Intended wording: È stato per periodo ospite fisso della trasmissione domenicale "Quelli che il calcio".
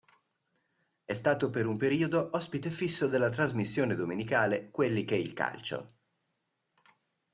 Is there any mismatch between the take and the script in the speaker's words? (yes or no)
yes